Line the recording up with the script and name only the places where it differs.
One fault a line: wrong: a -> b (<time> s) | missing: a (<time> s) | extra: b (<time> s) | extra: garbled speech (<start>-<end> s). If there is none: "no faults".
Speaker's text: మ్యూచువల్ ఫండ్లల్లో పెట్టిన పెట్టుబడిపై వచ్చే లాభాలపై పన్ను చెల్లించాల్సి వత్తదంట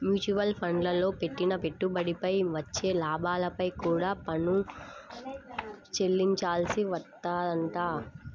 extra: కూడా (3.8 s)